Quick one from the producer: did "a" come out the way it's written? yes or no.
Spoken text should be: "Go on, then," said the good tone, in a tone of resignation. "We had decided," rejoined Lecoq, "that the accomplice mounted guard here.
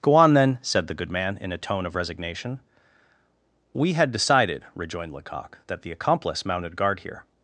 yes